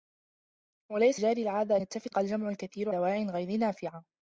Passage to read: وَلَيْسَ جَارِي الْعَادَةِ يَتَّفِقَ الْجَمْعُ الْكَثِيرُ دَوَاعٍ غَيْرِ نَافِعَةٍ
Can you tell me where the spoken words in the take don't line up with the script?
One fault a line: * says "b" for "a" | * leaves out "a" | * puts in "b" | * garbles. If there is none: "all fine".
all fine